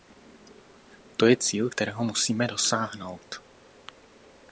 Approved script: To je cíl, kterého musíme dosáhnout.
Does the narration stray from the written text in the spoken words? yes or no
no